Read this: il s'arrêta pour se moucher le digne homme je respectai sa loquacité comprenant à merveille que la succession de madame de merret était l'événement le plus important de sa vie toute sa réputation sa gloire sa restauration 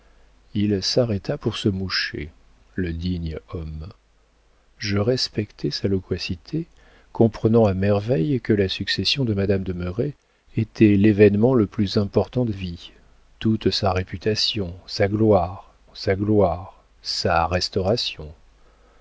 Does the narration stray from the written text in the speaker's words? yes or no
yes